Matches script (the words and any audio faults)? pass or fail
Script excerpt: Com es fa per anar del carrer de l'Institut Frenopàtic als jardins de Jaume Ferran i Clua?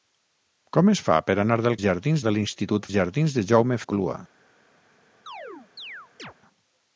fail